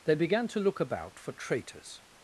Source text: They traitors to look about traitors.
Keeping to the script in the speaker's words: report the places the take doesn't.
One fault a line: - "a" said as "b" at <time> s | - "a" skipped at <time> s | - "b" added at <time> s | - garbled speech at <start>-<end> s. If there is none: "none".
- "traitors" said as "began" at 0.1 s
- "for" added at 1.2 s